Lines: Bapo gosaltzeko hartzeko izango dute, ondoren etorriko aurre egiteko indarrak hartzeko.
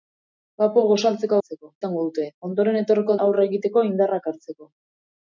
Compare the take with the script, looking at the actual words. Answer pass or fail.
pass